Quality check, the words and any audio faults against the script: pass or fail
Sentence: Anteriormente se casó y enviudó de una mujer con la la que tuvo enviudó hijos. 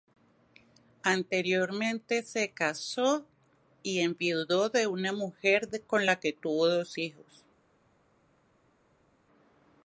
fail